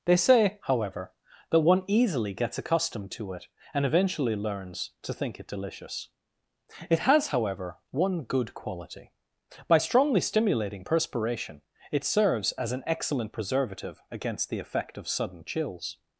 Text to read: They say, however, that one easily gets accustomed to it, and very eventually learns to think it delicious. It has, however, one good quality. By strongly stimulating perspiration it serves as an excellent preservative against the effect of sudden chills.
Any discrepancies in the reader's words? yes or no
yes